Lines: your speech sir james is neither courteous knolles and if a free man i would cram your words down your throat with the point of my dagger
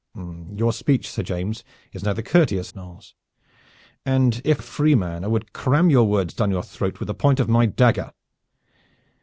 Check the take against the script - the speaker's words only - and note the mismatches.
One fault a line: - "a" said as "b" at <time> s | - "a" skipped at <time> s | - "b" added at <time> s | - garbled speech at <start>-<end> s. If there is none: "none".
none